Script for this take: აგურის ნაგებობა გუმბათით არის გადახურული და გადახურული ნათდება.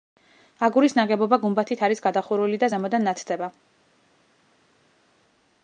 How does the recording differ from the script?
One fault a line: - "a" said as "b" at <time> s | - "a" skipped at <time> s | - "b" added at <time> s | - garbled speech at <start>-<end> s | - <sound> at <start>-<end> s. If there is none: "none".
- "გადახურული" said as "ზემოდან" at 2.7 s